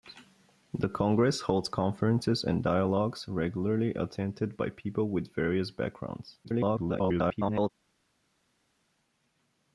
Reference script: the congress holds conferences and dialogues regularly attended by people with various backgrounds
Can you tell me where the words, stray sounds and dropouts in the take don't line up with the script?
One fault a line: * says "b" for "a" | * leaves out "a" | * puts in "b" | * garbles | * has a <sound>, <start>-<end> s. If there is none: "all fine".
* garbles